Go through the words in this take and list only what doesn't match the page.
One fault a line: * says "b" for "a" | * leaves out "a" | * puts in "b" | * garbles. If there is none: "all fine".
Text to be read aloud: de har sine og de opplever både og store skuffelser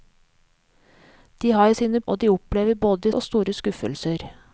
all fine